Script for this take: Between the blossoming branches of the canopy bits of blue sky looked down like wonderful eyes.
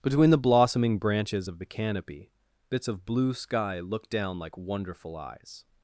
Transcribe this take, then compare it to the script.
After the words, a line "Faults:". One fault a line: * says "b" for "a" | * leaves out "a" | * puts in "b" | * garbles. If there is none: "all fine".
Between the blossoming branches of the canopy bits of blue sky looked down like wonderful eyes.
Faults:
all fine